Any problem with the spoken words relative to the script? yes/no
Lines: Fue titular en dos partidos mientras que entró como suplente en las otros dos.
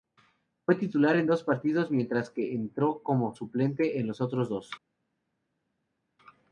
yes